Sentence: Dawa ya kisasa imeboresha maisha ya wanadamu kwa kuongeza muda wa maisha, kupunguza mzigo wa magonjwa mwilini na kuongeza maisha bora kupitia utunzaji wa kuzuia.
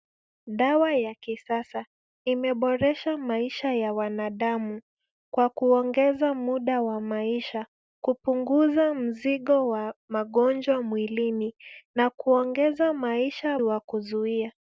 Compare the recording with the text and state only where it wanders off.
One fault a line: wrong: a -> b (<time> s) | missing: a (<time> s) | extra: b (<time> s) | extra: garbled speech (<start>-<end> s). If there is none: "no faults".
missing: bora kupitia utunzaji (13.6 s)